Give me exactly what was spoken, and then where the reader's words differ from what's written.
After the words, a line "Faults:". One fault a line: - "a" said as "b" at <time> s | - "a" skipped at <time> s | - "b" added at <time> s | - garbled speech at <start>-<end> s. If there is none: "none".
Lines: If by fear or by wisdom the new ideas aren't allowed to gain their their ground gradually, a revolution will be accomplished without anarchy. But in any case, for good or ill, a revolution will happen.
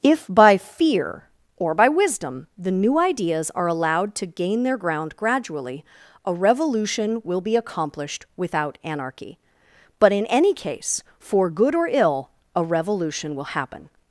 If by fear or by wisdom the new ideas are allowed to gain their ground gradually, a revolution will be accomplished without anarchy. But in any case, for good or ill, a revolution will happen.
Faults:
- "aren't" said as "are" at 3.5 s
- "their" skipped at 4.8 s